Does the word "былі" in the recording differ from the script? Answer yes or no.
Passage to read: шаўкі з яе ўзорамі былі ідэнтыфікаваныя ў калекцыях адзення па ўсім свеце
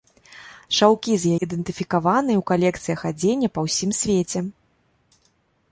yes